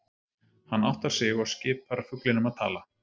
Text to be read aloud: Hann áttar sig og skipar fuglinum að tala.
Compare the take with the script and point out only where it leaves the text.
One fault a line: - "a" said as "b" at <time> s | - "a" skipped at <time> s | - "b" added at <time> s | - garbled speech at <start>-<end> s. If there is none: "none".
none